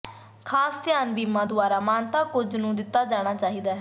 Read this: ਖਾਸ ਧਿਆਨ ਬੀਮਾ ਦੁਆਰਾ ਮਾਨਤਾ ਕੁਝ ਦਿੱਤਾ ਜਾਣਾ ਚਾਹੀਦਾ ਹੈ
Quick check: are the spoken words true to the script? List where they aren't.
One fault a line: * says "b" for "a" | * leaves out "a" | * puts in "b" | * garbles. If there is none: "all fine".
* puts in "ਨੂੰ"